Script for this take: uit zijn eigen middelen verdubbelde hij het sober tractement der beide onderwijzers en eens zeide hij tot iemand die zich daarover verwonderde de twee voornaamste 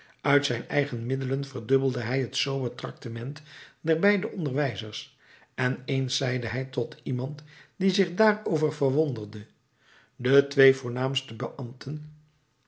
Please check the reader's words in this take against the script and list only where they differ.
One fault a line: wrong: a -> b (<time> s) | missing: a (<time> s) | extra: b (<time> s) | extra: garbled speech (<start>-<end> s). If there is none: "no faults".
no faults